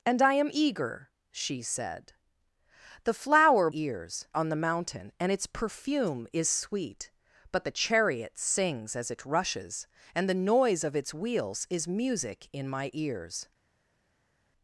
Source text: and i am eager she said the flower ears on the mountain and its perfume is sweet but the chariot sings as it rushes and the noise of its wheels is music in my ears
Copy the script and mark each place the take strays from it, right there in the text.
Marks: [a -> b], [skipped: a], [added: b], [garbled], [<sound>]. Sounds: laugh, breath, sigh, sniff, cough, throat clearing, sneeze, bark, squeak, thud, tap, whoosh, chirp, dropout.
and i am eager she said the flower ears on the mountain and its perfume is sweet but the chariot sings as it rushes and the noise of its wheels is music in my ears